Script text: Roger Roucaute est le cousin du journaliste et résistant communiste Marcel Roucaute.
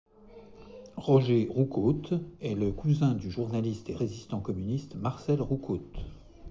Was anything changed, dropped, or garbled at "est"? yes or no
no